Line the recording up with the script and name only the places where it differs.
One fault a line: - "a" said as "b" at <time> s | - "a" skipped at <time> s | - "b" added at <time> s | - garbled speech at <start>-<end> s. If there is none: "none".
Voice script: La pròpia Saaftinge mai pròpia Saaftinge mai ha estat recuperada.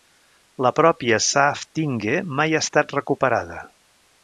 - "pròpia Saaftinge mai" skipped at 2.6 s